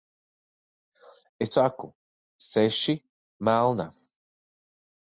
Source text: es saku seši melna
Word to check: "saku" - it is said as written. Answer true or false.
true